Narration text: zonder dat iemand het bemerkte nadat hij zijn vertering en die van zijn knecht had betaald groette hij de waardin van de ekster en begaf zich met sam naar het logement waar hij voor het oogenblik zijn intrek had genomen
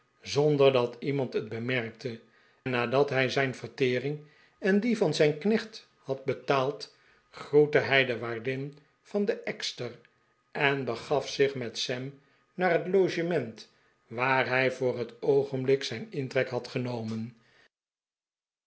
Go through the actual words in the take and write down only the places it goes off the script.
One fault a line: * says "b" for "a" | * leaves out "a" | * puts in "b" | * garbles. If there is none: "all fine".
all fine